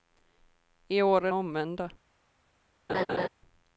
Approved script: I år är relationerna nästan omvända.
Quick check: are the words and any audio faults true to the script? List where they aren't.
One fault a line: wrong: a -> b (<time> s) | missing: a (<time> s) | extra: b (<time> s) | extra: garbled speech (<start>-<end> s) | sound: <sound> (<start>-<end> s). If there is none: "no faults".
missing: relationerna nästan (1.3 s)
sound: laugh (2.9-3.3 s)